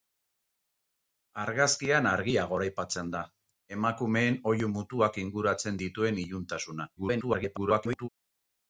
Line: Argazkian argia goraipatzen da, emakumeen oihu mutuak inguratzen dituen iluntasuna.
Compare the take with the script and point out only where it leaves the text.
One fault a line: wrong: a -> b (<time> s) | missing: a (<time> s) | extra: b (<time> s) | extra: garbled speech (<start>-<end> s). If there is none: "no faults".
extra: garbled speech (7.0-8.1 s)